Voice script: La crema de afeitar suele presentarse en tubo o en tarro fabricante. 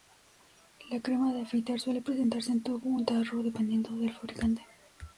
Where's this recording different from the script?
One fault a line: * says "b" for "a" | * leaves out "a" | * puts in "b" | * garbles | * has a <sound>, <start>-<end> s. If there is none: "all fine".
* puts in "dependiendo del"